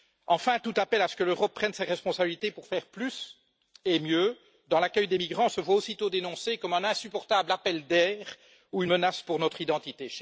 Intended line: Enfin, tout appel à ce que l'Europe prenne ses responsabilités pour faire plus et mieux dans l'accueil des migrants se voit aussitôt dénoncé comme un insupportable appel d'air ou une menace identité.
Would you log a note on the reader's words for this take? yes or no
yes